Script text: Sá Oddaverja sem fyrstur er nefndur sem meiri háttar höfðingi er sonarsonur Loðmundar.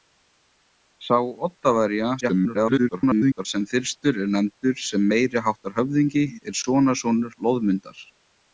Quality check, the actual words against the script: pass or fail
fail